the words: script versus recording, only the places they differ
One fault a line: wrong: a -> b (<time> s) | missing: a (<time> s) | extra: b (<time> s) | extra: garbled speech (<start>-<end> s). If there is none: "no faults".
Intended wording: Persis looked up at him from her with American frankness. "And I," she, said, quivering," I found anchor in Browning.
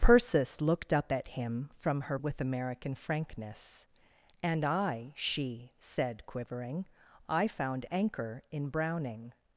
no faults